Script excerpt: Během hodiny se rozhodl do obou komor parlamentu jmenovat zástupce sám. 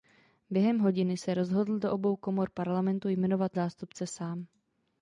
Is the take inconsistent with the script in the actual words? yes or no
no